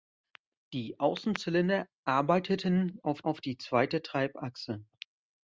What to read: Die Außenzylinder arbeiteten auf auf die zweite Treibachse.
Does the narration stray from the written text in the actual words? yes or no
no